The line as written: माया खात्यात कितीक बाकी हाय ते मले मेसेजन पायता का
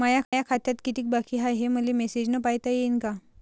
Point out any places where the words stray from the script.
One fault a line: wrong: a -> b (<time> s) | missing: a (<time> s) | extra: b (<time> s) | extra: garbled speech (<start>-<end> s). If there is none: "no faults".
wrong: ते -> हे (1.5 s)
extra: येईन (2.7 s)